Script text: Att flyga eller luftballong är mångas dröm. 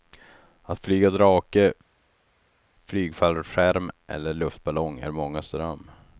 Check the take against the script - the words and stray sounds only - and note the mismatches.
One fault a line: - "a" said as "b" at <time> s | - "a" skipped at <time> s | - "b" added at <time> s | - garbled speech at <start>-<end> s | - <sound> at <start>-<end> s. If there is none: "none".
- "drake flygfallskärm" added at 1.1 s